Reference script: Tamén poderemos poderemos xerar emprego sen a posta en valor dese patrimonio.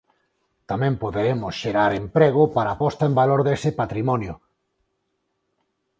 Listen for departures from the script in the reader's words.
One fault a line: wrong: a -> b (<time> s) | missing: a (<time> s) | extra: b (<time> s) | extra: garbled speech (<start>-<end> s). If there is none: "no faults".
missing: poderemos (1.5 s)
wrong: sen -> para (2.6 s)